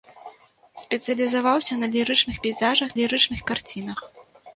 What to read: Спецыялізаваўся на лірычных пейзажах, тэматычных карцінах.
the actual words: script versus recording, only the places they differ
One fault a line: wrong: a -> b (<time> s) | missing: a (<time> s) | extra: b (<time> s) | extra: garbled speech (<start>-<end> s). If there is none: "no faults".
wrong: тэматычных -> лірычных (3.0 s)